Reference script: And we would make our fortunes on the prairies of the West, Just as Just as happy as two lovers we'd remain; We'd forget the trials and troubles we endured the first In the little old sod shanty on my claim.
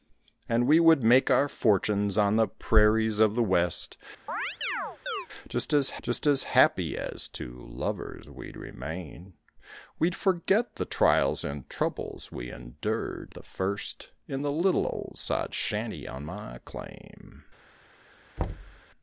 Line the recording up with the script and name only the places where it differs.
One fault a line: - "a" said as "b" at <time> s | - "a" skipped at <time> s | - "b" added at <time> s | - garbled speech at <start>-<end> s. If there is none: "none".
none